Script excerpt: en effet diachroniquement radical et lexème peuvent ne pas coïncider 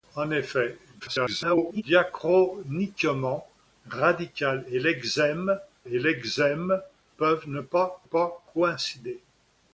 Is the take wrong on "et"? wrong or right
right